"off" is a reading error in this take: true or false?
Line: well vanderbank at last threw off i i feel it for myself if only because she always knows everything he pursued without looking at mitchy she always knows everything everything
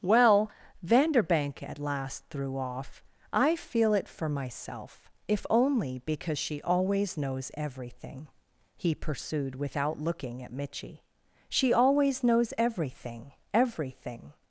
false